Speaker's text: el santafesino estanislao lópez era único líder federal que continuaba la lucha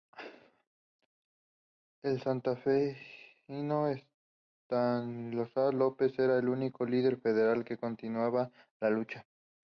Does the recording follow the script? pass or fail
fail